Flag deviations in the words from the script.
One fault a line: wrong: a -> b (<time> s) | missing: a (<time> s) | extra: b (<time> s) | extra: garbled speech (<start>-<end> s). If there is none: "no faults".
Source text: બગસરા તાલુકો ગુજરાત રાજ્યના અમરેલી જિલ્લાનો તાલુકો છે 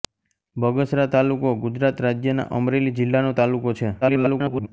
extra: garbled speech (4.0-4.7 s)